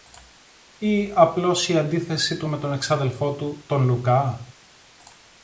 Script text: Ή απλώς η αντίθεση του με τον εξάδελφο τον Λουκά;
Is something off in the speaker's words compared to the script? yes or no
yes